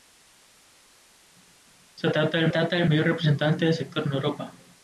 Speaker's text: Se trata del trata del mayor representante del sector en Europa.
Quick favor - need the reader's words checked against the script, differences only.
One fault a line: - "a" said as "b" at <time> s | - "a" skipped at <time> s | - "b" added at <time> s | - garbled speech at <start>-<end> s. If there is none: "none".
none